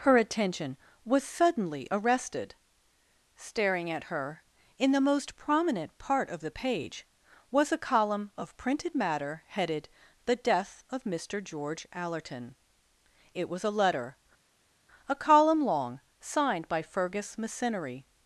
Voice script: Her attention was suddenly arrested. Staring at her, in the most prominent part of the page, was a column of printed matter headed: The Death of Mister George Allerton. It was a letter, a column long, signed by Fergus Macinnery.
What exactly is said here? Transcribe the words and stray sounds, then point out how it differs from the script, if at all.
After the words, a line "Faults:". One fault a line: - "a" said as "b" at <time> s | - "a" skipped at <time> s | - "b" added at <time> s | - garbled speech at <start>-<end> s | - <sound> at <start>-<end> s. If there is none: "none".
Her attention was suddenly arrested. Staring at her, in the most prominent part of the page, was a column of printed matter headed: The Death of Mister George Allerton. It was a letter, a column long, signed by Fergus Macinnery.
Faults:
none